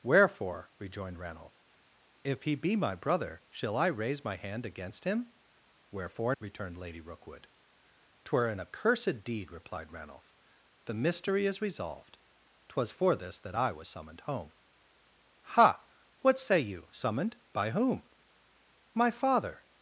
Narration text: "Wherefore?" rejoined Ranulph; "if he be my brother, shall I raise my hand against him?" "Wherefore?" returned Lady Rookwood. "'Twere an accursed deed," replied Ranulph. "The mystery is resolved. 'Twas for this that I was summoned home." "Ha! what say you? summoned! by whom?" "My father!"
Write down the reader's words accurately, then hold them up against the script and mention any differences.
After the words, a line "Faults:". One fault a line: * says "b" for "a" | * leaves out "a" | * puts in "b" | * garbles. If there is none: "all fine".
"Wherefore?" rejoined Ranulph; "if he be my brother, shall I raise my hand against him?" "Wherefore?" returned Lady Rookwood. "'Twere an accursed deed," replied Ranulph. "The mystery is resolved. 'Twas for this that I was summoned home." "Ha! what say you? summoned! by whom?" "My father!"
Faults:
all fine